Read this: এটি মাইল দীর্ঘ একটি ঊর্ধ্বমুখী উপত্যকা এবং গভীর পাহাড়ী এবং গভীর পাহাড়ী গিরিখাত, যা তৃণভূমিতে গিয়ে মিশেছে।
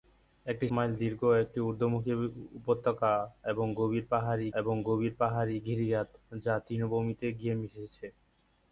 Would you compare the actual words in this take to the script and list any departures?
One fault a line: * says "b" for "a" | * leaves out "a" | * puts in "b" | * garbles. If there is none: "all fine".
all fine